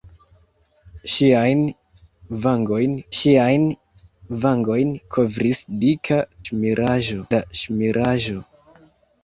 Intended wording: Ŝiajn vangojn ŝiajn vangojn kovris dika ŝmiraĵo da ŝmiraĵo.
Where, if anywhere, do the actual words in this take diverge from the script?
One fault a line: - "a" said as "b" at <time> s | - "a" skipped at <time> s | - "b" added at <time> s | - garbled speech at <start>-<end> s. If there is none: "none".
none